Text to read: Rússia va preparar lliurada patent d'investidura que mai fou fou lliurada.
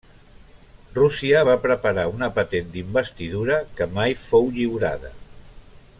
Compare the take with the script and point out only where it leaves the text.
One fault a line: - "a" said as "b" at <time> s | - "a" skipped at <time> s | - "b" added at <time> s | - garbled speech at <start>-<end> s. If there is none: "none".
- "lliurada" said as "una" at 2.1 s
- "fou" skipped at 4.5 s